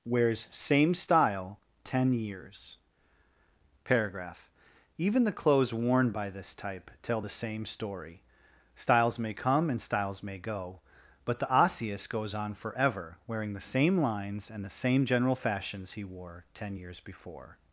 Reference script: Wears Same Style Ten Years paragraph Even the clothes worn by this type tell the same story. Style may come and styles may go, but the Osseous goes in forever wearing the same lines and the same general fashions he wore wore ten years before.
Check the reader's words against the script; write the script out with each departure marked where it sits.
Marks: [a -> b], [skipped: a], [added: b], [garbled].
Wears Same Style Ten Years paragraph Even the clothes worn by this type tell the same story. [Style -> Styles] may come and styles may go, but the Osseous goes [in -> on] forever wearing the same lines and the same general fashions he wore [skipped: wore] ten years before.